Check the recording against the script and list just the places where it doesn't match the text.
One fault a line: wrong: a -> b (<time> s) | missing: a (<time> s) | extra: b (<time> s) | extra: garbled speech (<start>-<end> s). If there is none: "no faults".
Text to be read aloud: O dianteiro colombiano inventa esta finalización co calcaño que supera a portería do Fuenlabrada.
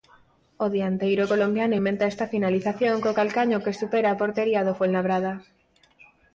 no faults